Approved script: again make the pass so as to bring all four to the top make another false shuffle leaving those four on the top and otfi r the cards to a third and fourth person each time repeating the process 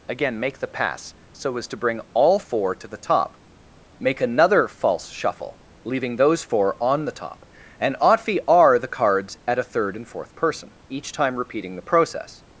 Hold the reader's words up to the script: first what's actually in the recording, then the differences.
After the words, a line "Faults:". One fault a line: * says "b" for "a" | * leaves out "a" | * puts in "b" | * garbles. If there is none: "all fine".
again make the pass so as to bring all four to the top make another false shuffle leaving those four on the top and otfi r the cards at a third and fourth person each time repeating the process
Faults:
* says "at" for "to"